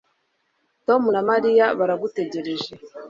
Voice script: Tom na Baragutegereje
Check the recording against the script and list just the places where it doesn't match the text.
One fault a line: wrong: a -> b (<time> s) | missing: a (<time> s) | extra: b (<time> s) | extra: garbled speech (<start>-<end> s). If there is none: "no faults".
extra: Mariya (1.3 s)